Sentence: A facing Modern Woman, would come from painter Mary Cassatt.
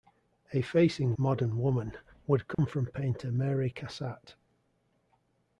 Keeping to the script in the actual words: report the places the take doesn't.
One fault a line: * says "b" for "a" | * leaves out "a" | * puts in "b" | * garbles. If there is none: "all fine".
all fine